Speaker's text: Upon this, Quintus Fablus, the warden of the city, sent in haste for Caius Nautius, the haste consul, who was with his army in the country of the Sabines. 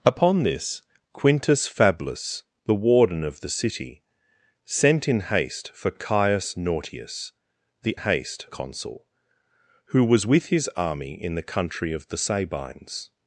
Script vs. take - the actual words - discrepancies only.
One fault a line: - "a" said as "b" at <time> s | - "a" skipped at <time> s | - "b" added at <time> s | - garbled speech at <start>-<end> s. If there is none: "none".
none